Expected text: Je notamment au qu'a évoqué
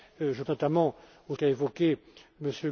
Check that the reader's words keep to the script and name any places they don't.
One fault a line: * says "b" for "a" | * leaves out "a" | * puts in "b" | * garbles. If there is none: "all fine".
all fine